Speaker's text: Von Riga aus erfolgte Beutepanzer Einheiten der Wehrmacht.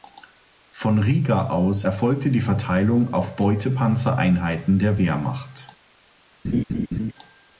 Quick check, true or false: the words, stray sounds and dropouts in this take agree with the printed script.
false